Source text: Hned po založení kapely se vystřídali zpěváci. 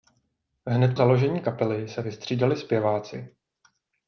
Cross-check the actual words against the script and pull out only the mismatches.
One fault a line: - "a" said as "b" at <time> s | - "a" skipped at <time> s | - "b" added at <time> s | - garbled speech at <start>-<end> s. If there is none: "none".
- "po" skipped at 0.9 s